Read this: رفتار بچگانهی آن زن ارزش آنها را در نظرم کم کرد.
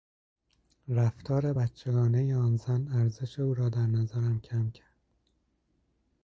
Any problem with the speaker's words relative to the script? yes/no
yes